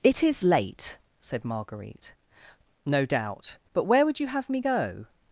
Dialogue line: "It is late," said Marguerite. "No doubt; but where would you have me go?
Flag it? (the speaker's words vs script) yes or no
no